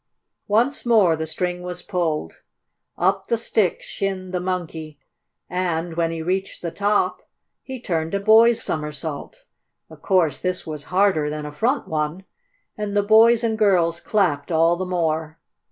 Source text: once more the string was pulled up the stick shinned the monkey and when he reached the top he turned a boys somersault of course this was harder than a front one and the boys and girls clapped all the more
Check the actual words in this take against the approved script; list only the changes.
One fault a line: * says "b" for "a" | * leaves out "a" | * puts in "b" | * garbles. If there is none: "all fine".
all fine